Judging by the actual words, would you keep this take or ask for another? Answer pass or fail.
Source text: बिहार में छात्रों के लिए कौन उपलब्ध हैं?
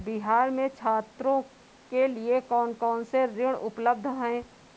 fail